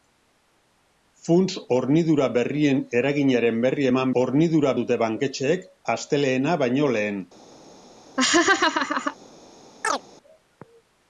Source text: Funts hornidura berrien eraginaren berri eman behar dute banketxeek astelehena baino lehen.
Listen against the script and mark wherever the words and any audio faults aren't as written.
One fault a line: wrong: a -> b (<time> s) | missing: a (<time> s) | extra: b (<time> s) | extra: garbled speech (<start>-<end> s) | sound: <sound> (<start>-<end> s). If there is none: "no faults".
wrong: behar -> hornidura (4.2 s)
sound: laugh (8.2-9.2 s)
sound: chirp (9.8-10.0 s)